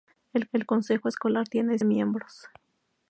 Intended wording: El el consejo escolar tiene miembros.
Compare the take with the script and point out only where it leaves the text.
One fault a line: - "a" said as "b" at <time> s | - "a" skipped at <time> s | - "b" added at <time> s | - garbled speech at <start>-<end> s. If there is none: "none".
none